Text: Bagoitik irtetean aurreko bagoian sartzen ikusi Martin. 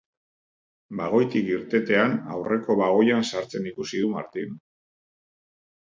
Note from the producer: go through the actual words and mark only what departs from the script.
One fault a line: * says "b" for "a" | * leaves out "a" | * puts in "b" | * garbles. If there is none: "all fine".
* puts in "du"